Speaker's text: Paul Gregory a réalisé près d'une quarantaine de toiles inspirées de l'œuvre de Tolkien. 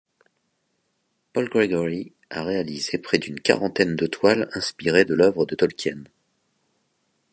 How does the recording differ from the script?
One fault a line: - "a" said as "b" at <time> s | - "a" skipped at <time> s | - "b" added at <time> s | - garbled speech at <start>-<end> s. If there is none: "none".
none